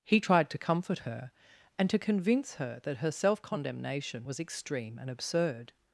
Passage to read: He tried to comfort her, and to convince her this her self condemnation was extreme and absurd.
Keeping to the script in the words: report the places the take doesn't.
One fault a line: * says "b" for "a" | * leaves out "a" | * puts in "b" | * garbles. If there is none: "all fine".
* says "that" for "this"